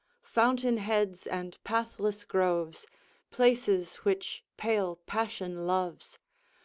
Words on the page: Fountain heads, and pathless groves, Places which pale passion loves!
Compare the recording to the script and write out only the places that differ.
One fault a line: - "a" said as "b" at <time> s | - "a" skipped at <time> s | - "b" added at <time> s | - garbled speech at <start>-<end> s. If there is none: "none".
none